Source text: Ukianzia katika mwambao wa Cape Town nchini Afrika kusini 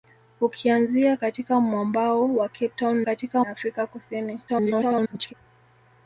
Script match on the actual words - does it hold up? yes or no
no